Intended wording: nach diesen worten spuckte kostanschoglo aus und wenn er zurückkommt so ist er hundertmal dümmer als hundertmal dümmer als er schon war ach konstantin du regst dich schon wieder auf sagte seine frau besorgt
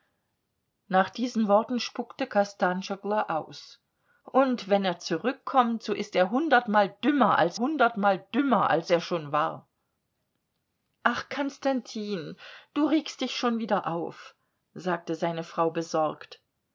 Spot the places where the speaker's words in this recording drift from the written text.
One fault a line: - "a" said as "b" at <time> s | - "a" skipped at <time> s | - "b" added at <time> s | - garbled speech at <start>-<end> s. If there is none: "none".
none